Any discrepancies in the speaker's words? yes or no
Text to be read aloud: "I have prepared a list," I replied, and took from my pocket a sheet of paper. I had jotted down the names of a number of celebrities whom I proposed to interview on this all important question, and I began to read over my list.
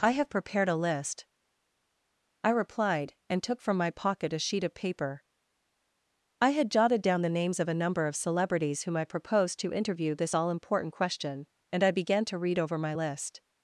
yes